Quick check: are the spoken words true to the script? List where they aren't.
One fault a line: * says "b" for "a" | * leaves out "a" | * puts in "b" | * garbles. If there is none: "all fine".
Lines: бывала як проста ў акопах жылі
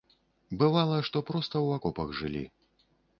* says "што" for "як"